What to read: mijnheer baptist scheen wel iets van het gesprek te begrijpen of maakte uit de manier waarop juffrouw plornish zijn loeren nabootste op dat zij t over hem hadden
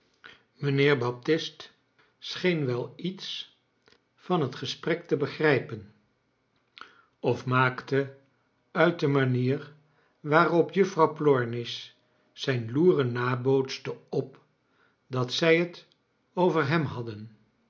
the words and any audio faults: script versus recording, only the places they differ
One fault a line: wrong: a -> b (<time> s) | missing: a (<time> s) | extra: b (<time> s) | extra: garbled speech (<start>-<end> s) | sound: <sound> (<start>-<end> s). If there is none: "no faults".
no faults